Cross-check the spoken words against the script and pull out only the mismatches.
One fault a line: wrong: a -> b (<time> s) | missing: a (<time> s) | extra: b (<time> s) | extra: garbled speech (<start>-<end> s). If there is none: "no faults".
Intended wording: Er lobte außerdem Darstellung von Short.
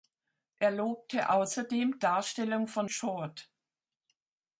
no faults